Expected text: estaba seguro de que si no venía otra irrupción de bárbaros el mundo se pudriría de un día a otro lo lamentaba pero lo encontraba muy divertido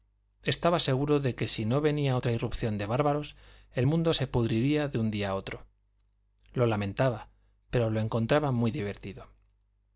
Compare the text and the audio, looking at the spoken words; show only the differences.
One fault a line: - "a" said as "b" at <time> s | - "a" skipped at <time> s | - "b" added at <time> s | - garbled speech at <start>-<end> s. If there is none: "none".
none